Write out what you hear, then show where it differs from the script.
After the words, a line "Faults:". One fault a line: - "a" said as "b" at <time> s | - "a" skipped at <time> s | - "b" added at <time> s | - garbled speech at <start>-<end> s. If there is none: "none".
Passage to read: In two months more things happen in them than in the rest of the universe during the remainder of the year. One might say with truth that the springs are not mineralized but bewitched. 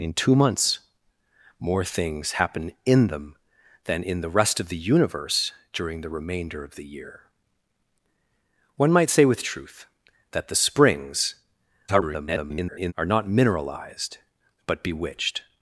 In two months more things happen in them than in the rest of the universe during the remainder of the year. One might say with truth that the springs [garbled] are not mineralized but bewitched.
Faults:
- garbled speech at 11.9-12.9 s